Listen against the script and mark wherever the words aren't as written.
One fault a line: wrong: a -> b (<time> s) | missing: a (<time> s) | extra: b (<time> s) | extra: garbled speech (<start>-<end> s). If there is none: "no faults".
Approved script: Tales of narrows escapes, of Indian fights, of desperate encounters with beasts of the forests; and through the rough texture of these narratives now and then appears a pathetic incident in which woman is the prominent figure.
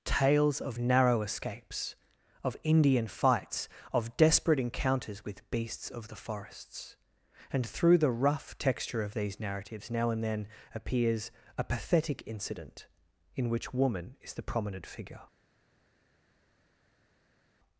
wrong: narrows -> narrow (0.8 s)